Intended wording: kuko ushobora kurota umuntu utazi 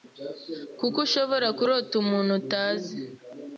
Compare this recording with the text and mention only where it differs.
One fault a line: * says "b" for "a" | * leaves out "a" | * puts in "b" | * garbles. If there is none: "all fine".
all fine